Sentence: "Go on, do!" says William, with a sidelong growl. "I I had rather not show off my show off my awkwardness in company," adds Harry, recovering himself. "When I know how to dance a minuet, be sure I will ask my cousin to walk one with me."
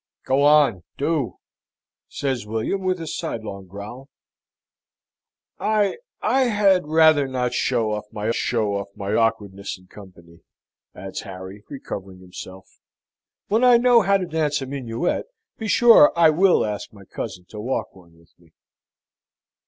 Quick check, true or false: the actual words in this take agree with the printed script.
true